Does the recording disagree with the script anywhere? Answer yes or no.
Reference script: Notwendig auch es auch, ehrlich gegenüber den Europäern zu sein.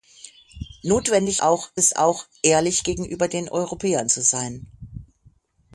no